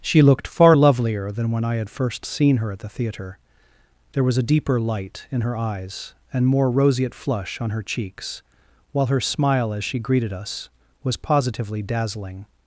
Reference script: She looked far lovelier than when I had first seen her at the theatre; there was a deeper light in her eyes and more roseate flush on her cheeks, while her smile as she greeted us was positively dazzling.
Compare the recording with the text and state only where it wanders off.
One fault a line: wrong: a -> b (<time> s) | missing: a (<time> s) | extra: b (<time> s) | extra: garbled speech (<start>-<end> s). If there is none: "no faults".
no faults